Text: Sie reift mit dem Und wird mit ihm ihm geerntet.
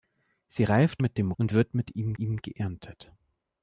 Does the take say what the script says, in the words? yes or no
yes